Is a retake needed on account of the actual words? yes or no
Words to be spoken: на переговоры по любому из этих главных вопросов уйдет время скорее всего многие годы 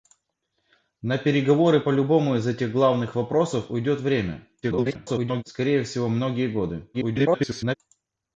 yes